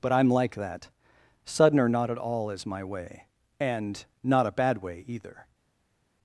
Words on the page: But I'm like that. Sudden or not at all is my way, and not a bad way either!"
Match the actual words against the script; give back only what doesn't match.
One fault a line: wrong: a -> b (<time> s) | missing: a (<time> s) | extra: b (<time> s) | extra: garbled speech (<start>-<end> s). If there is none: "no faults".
no faults